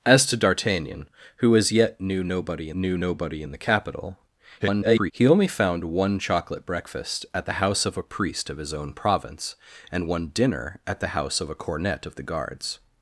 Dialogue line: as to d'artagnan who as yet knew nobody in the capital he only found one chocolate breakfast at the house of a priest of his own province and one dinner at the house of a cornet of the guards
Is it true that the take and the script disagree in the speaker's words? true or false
true